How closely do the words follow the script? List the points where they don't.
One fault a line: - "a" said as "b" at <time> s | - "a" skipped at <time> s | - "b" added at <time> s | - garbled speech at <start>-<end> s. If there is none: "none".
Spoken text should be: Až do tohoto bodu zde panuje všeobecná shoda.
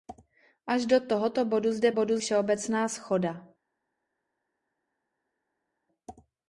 - "panuje" said as "bodu" at 1.9 s